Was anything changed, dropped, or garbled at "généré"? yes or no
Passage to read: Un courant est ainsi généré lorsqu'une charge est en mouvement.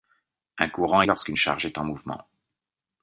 yes